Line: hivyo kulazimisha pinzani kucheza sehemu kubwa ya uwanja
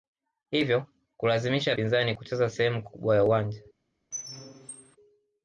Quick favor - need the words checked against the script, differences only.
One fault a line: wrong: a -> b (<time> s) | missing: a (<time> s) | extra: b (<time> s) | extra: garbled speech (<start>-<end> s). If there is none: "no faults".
no faults